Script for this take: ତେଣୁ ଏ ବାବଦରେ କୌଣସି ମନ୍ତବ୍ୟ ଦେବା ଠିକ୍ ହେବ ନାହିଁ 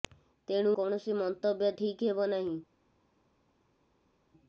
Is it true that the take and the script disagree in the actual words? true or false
true